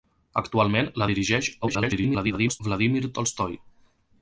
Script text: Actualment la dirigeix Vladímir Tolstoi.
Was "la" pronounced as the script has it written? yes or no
yes